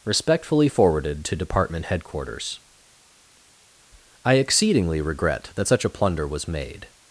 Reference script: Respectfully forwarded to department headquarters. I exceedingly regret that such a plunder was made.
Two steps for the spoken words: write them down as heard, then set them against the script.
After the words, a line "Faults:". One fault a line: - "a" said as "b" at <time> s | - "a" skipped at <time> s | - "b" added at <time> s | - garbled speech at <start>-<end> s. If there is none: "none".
Respectfully forwarded to department headquarters. I exceedingly regret that such a plunder was made.
Faults:
none